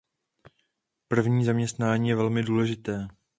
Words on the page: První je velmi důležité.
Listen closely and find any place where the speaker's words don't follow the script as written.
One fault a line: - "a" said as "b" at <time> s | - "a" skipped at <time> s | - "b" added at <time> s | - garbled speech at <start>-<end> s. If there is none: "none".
- "zaměstnání" added at 1.4 s